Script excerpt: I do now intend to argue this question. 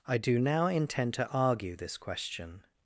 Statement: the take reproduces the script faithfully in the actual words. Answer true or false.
true